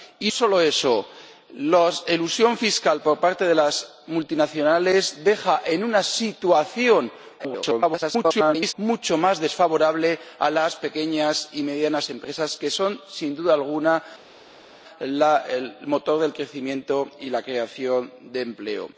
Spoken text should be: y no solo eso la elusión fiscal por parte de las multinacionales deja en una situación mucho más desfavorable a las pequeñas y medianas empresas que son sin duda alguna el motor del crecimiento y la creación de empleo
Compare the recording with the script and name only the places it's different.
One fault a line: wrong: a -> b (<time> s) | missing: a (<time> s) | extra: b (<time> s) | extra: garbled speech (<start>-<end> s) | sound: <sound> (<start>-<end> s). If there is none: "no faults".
missing: no (0.3 s)
extra: garbled speech (7.4-8.7 s)